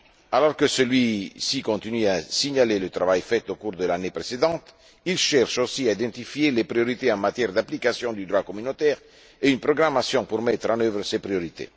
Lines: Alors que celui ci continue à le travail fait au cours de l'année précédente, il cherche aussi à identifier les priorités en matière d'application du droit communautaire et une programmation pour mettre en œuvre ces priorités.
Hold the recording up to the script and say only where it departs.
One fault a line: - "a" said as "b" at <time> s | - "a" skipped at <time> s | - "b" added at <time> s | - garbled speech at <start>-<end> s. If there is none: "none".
- "signaler" added at 2.2 s